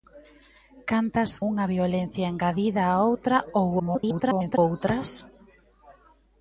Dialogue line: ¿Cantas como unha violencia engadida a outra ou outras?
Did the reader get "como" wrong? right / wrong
wrong